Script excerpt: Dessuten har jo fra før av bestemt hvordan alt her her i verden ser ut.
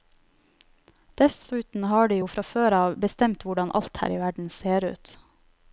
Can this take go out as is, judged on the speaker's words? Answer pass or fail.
fail